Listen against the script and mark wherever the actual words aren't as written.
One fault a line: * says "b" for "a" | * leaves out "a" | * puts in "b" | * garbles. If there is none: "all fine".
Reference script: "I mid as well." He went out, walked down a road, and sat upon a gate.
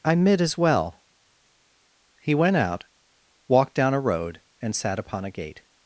all fine